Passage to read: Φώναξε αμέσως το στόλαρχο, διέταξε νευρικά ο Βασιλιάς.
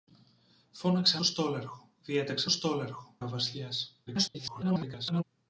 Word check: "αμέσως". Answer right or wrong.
wrong